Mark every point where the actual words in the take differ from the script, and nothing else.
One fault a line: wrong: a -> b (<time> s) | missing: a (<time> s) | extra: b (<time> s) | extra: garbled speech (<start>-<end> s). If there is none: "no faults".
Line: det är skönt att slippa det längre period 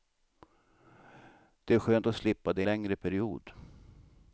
no faults